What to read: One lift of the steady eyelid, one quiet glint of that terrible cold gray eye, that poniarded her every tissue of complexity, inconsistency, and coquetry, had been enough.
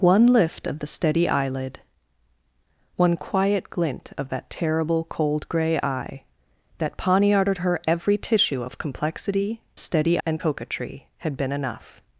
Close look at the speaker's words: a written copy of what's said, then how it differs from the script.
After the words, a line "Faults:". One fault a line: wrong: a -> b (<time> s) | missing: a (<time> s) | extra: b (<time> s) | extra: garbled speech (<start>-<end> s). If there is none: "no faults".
One lift of the steady eyelid, one quiet glint of that terrible cold gray eye, that poniarded her every tissue of complexity, steady, and coquetry, had been enough.
Faults:
wrong: inconsistency -> steady (9.8 s)